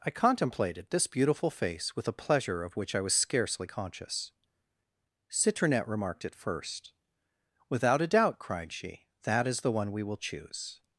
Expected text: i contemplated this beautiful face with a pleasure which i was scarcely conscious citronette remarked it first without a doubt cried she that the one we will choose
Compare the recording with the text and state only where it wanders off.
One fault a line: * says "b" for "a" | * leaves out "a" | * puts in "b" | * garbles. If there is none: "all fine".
* puts in "of"
* puts in "is"